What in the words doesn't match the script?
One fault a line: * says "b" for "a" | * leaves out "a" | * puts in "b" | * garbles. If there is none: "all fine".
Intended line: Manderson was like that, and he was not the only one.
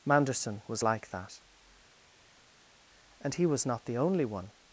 all fine